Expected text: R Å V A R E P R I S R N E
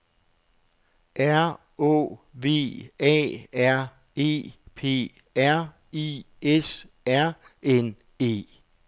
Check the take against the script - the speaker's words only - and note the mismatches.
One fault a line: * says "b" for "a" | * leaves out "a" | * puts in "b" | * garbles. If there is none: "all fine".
all fine